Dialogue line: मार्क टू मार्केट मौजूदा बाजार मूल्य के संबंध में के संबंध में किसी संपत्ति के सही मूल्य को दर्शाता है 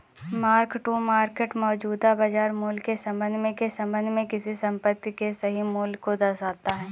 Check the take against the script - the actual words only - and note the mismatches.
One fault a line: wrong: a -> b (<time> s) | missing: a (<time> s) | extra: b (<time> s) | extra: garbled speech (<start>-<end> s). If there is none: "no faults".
no faults